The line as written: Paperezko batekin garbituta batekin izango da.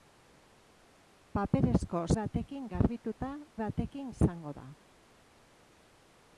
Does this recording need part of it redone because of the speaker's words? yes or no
no